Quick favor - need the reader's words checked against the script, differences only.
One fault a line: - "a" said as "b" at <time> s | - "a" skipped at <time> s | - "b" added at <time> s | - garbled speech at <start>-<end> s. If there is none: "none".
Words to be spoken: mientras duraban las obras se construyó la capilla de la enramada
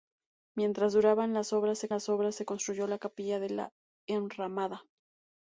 - "las obras se" added at 1.9 s